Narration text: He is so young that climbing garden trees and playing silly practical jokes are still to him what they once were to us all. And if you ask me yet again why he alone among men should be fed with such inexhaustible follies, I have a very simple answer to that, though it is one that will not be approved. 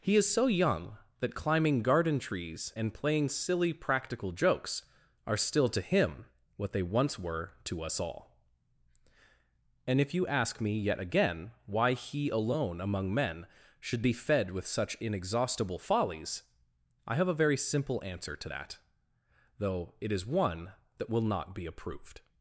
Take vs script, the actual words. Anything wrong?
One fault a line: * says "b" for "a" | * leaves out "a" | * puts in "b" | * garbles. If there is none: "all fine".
all fine